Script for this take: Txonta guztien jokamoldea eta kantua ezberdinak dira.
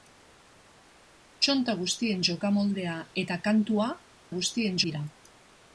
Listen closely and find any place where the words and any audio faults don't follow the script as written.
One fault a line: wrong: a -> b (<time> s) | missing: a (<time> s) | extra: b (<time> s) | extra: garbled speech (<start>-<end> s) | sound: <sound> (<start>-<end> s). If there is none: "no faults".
wrong: ezberdinak -> guztien (4.4 s)